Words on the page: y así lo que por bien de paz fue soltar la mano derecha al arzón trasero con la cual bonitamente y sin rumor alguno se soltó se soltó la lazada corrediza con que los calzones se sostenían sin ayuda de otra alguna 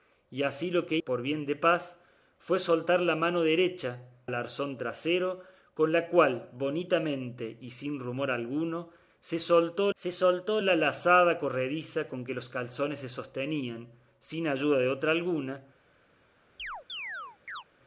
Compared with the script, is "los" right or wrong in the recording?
right